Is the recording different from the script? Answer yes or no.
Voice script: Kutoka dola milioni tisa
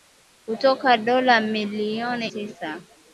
no